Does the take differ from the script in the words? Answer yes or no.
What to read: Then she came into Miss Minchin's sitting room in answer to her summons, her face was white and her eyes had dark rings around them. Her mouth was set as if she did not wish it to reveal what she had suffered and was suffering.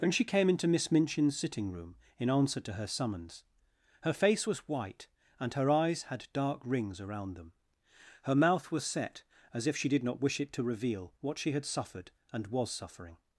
no